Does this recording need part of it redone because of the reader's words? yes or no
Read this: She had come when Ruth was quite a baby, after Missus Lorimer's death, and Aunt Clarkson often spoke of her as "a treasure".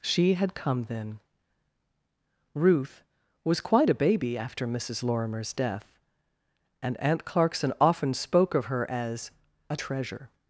yes